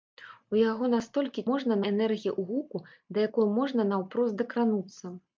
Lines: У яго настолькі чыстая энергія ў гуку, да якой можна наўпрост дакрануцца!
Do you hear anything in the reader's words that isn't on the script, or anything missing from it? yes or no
yes